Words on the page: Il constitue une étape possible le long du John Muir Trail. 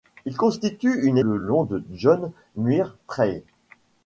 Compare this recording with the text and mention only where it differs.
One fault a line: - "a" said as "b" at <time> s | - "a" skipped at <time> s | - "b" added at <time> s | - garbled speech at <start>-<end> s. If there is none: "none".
- "étape possible" skipped at 1.2 s